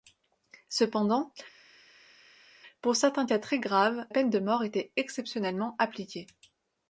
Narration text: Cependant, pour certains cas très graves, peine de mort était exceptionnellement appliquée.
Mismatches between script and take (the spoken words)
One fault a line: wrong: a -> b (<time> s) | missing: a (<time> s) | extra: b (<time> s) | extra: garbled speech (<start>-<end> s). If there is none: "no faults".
no faults